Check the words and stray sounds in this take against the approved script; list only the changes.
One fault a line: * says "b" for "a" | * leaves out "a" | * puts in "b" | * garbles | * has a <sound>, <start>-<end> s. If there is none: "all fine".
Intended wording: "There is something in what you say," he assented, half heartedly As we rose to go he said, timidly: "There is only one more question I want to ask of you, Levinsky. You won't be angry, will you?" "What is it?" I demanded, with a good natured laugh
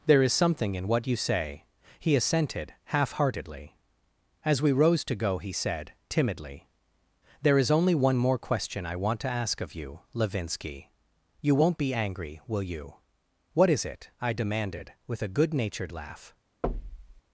* has a thud, 16.6-17.2 s